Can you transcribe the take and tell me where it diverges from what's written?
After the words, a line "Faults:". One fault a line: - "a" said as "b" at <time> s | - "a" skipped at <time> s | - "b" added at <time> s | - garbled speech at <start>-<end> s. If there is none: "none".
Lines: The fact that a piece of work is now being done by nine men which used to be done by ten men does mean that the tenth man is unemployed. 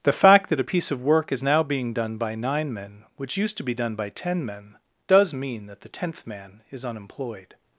The fact that a piece of work is now being done by nine men which used to be done by ten men does mean that the tenth man is unemployed.
Faults:
none